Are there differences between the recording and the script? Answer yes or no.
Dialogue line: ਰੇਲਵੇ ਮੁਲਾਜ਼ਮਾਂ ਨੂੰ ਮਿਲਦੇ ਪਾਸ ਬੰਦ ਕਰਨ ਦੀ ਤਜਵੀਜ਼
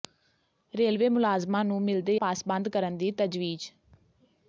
no